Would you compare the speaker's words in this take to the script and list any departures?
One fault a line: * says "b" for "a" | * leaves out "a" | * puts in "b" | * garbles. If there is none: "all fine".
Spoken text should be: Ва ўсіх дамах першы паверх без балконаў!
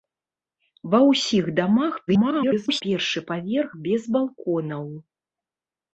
* garbles